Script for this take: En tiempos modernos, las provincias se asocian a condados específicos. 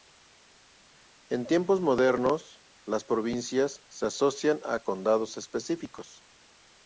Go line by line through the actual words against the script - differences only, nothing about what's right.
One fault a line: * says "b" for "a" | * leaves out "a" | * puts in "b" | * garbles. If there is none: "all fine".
all fine